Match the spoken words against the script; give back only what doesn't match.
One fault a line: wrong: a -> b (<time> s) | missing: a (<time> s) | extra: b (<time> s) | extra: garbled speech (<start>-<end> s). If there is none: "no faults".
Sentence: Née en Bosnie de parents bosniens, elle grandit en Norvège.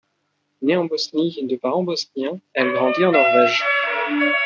no faults